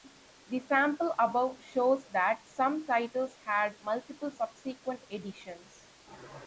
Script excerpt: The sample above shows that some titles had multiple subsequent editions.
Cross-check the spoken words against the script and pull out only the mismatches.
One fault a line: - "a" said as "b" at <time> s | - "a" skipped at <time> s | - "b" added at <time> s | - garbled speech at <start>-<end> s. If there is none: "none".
none